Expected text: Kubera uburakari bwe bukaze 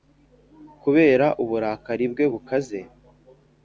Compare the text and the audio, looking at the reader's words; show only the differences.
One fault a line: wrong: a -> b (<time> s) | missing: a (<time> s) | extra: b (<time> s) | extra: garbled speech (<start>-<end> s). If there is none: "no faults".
no faults